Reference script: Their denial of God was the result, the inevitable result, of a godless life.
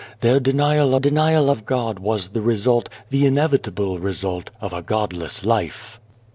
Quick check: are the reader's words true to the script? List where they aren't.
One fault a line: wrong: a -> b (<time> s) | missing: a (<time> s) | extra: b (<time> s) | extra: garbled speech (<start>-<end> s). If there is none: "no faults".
extra: denial (1.0 s)